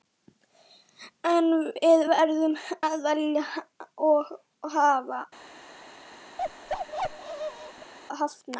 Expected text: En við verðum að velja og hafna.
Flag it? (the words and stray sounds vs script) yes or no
yes